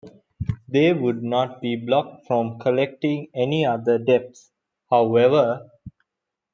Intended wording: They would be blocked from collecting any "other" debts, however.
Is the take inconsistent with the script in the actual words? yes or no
yes